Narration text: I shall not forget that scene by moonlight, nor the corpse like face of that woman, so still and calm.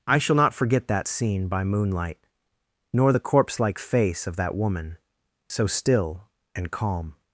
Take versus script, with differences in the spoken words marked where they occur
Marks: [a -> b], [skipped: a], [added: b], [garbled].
I shall not forget that scene by moonlight, nor the corpse like face of that woman, so still and calm.